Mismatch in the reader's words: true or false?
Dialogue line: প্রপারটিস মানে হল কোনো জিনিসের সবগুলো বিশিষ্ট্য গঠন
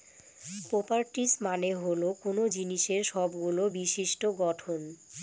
false